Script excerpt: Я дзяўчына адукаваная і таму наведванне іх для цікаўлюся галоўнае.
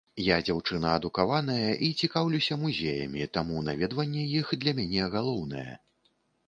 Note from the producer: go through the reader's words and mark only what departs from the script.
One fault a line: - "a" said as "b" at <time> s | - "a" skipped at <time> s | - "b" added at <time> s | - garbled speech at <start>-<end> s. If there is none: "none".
- "цікаўлюся музеямі" added at 2.0 s
- "цікаўлюся" said as "мяне" at 4.8 s